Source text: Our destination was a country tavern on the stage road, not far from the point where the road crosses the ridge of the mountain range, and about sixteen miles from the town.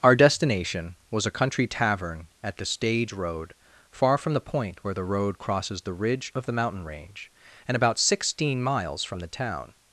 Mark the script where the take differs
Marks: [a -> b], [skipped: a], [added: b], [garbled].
Our destination was a country tavern [on -> at] the stage road, [skipped: not] far from the point where the road crosses the ridge of the mountain range, and about sixteen miles from the town.